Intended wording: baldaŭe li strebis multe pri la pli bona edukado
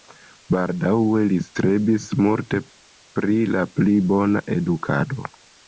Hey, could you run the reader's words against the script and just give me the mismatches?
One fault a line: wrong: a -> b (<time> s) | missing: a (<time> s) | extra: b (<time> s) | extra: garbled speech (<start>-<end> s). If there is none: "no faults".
no faults